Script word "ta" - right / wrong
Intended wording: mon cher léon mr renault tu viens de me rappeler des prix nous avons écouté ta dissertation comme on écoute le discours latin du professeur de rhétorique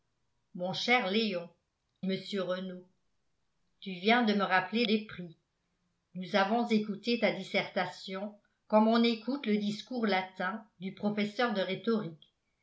right